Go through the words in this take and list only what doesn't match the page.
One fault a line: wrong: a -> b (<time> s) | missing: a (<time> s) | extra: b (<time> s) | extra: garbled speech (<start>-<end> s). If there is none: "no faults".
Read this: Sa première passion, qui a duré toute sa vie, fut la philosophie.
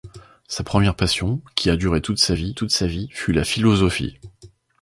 extra: toute sa vie (2.5 s)